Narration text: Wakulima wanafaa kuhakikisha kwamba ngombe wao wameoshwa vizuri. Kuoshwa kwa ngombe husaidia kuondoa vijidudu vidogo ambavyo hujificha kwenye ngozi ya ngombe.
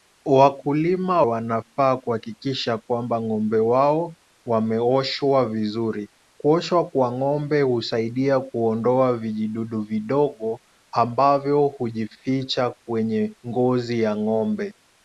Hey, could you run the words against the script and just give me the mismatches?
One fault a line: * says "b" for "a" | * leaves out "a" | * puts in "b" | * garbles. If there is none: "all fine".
all fine